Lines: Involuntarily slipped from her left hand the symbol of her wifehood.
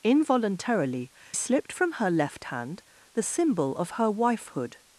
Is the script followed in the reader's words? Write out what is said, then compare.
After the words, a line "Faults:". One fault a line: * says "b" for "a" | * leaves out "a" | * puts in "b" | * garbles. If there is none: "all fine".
Involuntarily slipped from her left hand the symbol of her wifehood.
Faults:
all fine